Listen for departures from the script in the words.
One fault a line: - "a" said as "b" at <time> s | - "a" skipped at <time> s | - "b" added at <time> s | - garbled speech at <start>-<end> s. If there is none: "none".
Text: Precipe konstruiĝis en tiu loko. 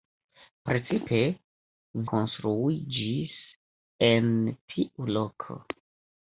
none